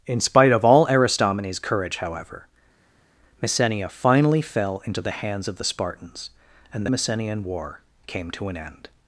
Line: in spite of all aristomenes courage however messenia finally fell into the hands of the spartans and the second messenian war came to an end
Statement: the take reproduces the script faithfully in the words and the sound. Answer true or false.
false